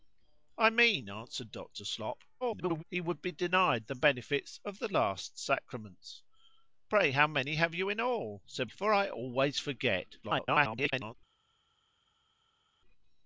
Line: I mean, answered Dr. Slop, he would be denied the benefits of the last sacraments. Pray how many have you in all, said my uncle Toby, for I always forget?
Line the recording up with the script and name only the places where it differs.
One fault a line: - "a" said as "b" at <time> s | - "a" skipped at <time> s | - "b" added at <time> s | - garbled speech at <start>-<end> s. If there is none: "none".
- garbled speech at 2.4-2.8 s
- "my uncle Toby" skipped at 8.7 s
- garbled speech at 10.2-11.2 s